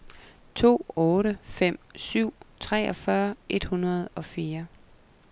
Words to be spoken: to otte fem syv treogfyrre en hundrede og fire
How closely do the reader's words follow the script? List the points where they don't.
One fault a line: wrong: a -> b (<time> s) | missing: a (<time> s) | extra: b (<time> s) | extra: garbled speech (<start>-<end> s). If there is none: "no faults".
wrong: en -> et (3.5 s)